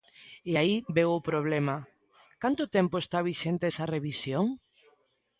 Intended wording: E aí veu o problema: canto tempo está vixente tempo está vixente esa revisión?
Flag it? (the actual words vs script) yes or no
yes